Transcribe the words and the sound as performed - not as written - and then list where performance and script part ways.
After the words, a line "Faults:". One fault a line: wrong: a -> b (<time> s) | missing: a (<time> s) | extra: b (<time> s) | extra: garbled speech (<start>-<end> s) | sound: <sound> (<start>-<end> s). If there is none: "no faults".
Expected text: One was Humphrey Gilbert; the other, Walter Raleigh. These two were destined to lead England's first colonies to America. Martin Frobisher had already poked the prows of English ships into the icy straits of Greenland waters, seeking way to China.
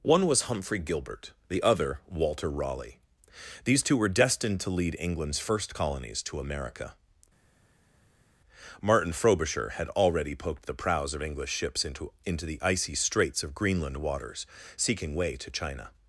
One was Humphrey Gilbert; the other, Walter Raleigh. These two were destined to lead England's first colonies to America. Martin Frobisher had already poked the prows of English ships into into the icy straits of Greenland waters, seeking way to China.
Faults:
extra: into (12.3 s)